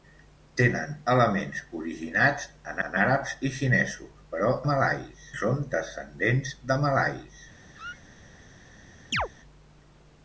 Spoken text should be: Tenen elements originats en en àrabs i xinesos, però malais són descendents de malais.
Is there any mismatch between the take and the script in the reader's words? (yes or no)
no